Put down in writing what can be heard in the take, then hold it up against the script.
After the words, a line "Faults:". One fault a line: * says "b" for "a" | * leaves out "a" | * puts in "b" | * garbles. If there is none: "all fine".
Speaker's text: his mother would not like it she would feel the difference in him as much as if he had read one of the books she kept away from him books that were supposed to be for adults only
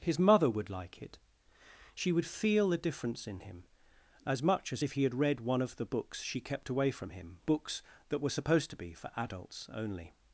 his mother would like it she would feel the difference in him as much as if he had read one of the books she kept away from him books that were supposed to be for adults only
Faults:
* leaves out "not"